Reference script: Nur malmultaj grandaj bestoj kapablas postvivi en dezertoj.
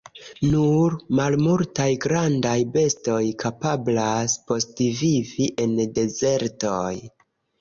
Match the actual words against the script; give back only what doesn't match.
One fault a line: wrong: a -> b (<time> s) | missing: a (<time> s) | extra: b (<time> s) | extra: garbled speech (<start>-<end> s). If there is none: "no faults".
no faults